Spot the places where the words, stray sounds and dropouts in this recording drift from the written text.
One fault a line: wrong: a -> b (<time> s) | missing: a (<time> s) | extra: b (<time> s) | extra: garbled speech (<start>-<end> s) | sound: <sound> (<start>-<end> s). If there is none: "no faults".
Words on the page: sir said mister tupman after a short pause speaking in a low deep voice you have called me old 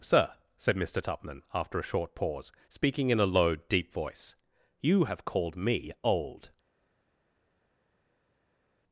no faults